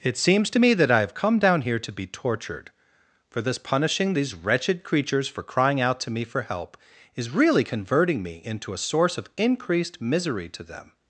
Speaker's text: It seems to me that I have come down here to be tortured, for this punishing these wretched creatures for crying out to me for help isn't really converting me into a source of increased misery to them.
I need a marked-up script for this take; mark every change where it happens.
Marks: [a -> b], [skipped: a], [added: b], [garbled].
It seems to me that I have come down here to be tortured, for this punishing these wretched creatures for crying out to me for help [isn't -> is] really converting me into a source of increased misery to them.